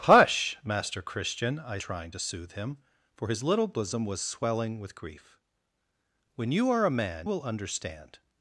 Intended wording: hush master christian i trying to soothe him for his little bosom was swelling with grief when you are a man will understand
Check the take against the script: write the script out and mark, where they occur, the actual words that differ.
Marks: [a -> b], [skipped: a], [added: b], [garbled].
hush master christian i trying to soothe him for his little bosom was swelling with grief when you are a man will understand